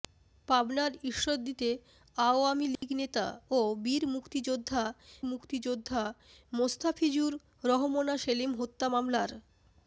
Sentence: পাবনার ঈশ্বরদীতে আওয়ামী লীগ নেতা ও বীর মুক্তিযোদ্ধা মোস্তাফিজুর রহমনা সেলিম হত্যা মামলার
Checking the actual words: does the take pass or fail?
fail